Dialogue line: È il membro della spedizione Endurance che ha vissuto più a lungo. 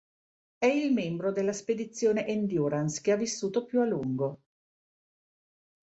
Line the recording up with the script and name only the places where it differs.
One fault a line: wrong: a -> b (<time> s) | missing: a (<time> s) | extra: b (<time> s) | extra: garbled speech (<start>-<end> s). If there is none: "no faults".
no faults